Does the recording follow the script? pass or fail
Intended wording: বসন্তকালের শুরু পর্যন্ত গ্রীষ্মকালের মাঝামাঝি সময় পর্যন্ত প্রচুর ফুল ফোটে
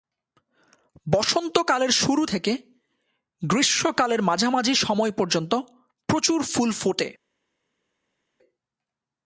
fail